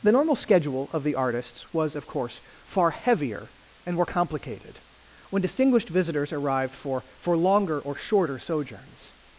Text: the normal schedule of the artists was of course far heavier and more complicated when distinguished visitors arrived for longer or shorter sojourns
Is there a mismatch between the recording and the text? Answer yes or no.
yes